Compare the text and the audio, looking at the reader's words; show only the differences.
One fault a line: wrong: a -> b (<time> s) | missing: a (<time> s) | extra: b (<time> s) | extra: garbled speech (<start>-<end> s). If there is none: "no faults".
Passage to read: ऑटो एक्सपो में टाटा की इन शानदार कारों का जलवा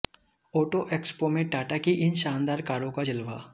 no faults